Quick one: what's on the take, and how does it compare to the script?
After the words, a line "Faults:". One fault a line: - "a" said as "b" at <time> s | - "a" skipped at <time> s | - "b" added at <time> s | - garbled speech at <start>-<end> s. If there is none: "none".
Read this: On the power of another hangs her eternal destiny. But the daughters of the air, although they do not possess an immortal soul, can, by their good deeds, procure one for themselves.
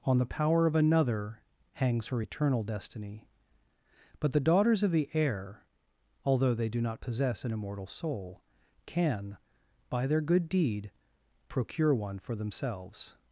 On the power of another hangs her eternal destiny. But the daughters of the air, although they do not possess an immortal soul, can, by their good deed, procure one for themselves.
Faults:
- "deeds" said as "deed" at 10.5 s